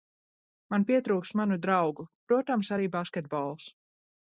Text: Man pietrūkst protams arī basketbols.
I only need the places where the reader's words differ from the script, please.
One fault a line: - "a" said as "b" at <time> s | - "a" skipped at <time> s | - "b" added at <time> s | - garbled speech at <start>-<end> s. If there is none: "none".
- "manu draugu" added at 1.4 s